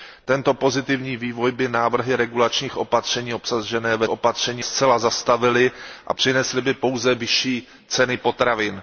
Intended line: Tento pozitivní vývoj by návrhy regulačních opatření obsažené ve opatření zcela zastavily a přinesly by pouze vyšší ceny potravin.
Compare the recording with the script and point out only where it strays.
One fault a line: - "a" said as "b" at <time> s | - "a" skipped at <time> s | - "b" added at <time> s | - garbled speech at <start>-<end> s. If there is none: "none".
none